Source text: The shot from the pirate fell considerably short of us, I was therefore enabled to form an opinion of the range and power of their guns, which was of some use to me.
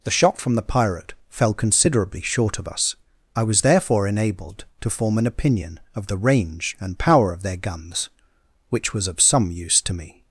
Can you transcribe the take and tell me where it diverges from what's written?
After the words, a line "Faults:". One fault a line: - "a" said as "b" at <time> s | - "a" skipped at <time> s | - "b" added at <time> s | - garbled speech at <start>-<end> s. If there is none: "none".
The shot from the pirate fell considerably short of us, I was therefore enabled to form an opinion of the range and power of their guns, which was of some use to me.
Faults:
none